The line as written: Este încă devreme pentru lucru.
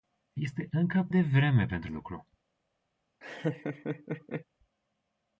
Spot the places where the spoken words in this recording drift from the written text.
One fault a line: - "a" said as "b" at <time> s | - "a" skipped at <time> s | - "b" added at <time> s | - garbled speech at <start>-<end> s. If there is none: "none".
none